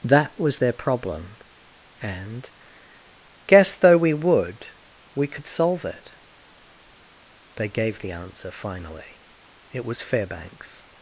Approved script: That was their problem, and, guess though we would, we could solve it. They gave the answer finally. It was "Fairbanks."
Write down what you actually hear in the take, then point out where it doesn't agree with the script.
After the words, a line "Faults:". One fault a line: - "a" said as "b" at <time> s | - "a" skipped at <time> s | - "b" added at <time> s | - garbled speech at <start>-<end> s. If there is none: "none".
That was their problem, and, guess though we would, we could solve it. They gave the answer finally. It was "Fairbanks."
Faults:
none